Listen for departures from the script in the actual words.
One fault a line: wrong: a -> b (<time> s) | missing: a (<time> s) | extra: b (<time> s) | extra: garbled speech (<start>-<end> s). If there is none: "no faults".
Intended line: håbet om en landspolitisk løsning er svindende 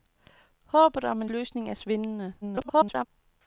missing: landspolitisk (1.3 s)
extra: garbled speech (2.4-3.1 s)